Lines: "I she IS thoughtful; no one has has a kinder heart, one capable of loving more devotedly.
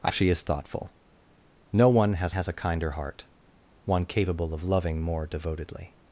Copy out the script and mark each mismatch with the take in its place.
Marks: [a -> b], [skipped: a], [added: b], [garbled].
"I she IS thoughtful; no one has has a kinder heart, one capable of loving more devotedly.